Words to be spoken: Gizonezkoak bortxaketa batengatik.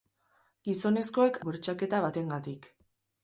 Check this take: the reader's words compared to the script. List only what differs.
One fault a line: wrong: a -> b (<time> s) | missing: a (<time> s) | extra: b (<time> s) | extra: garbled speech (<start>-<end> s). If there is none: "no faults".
no faults